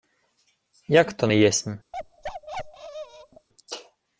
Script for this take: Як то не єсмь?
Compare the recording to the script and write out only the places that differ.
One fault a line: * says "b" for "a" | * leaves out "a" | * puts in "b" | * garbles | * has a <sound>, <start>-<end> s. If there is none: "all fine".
* has a bark, 1.9-3.5 s